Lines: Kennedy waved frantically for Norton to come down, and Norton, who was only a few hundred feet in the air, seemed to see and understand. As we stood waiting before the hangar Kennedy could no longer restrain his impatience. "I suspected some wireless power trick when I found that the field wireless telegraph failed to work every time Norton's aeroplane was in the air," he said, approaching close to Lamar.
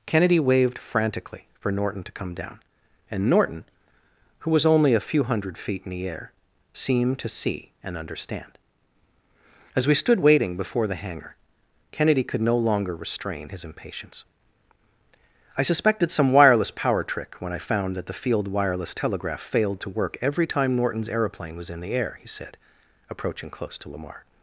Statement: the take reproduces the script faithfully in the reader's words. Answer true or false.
true